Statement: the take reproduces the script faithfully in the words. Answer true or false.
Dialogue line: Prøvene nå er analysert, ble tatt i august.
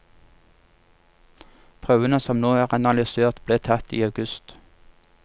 false